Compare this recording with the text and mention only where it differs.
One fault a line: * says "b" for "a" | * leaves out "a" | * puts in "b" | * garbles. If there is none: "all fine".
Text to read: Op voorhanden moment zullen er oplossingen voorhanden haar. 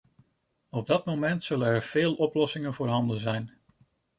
* says "dat" for "voorhanden"
* puts in "veel"
* says "zijn" for "haar"